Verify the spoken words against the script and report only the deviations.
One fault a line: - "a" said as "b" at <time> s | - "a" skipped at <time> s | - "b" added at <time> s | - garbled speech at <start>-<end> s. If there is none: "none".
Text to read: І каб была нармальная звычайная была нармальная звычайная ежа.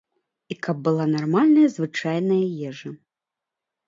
- "была нармальная звычайная" skipped at 2.4 s